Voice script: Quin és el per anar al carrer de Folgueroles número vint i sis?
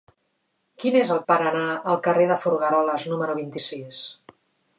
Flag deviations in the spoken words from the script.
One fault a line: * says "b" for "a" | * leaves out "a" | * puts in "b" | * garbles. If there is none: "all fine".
all fine